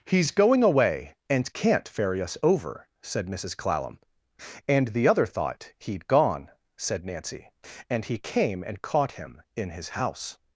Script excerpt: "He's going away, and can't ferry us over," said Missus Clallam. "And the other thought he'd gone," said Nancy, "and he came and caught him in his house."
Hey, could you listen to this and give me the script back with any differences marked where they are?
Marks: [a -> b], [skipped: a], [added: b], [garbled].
"He's going away, and can't ferry us over," said Missus Clallam. "And the other thought he'd gone," said Nancy, "and he came and caught him in his house."